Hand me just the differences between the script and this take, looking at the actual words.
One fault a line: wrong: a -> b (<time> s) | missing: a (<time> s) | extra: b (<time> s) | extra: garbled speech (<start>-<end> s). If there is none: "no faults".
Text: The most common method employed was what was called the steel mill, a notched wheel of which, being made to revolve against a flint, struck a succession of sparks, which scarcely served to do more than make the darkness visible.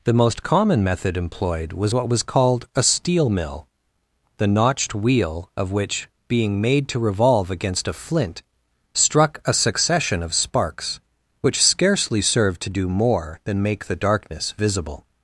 wrong: the -> a (2.7 s)
wrong: a -> the (4.4 s)